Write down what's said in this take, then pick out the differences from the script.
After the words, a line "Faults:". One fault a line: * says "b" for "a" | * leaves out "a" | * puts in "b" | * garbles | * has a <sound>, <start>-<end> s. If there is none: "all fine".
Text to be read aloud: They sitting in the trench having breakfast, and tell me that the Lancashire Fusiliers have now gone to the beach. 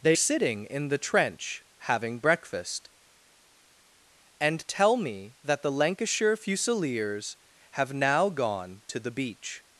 They sitting in the trench having breakfast, and tell me that the Lancashire Fusiliers have now gone to the beach.
Faults:
all fine